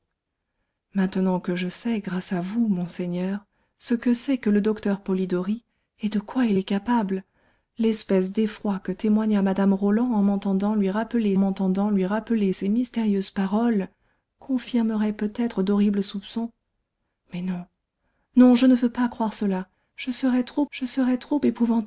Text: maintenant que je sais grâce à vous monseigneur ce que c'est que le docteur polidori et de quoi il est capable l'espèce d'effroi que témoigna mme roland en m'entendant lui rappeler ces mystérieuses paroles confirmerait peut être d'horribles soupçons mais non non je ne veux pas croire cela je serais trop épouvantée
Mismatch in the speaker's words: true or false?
true